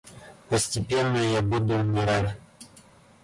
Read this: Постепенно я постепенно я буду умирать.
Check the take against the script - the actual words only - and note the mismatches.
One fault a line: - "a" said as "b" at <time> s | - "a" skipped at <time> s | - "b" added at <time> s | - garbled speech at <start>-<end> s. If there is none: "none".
- "постепенно я" skipped at 1.4 s